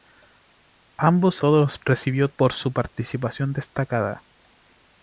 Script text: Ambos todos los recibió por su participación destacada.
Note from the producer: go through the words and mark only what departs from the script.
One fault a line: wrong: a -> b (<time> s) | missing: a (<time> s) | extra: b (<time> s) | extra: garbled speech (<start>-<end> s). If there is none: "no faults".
no faults